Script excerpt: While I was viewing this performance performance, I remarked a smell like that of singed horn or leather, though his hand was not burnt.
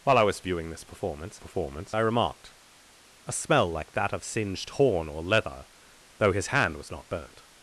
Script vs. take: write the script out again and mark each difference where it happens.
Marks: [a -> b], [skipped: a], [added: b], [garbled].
While I was viewing this performance performance, I remarked a smell like that of singed horn or leather, though his hand was not burnt.